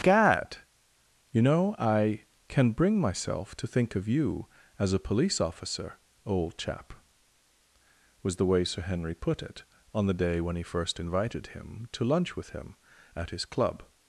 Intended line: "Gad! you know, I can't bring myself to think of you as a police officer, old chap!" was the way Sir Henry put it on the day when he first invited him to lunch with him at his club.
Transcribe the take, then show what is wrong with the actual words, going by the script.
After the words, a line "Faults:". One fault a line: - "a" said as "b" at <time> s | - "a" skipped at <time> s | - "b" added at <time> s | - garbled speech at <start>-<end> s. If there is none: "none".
"Gad! you know, I can bring myself to think of you as a police officer, old chap!" was the way Sir Henry put it on the day when he first invited him to lunch with him at his club.
Faults:
- "can't" said as "can" at 2.5 s